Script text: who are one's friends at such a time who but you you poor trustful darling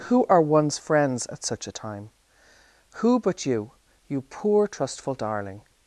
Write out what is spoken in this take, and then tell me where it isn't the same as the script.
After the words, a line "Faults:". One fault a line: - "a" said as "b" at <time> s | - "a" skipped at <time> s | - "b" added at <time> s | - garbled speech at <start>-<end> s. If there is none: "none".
who are one's friends at such a time who but you you poor trustful darling
Faults:
none